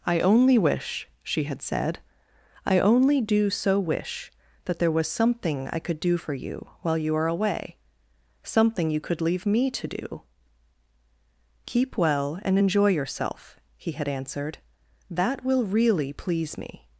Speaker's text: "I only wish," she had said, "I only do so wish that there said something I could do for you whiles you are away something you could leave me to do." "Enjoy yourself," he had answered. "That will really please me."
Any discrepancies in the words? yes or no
yes